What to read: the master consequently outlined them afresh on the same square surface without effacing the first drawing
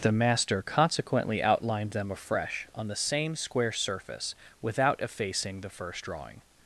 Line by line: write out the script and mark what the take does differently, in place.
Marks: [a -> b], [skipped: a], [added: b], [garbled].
the master consequently outlined them afresh on the same square surface without effacing the first drawing